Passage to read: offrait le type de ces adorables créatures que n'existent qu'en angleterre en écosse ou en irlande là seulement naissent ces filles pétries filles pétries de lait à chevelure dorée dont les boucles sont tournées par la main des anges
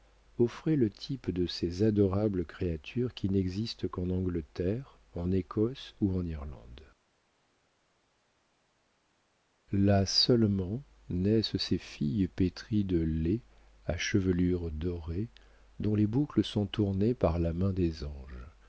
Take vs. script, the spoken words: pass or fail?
fail